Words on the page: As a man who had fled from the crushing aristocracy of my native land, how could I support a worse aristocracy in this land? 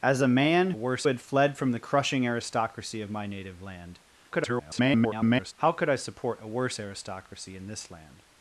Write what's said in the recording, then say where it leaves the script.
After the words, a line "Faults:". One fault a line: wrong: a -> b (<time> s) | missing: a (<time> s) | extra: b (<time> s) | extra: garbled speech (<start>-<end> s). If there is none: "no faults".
As a man worse had fled from the crushing aristocracy of my native land, [garbled] how could I support a worse aristocracy in this land?
Faults:
wrong: who -> worse (0.8 s)
extra: garbled speech (4.3-5.5 s)